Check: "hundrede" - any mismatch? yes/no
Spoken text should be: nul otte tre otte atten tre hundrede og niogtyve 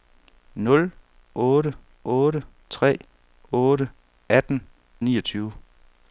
yes